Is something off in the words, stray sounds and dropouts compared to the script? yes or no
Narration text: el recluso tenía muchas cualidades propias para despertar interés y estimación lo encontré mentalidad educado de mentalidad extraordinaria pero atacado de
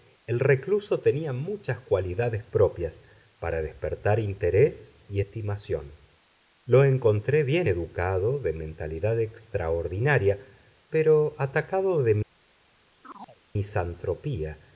yes